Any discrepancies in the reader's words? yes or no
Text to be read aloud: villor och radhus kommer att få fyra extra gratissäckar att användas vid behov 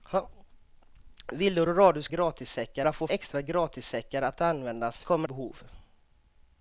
yes